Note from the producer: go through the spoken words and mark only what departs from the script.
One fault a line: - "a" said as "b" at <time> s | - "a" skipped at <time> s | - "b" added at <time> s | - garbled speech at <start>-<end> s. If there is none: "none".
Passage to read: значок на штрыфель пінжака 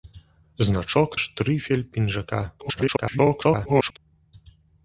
- "на" skipped at 1.2 s
- garbled speech at 2.6-4.0 s